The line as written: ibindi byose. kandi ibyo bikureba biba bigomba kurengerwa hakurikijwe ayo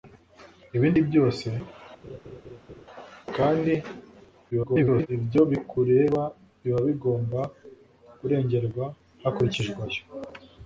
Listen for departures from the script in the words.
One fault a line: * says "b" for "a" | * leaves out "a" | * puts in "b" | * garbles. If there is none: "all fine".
* garbles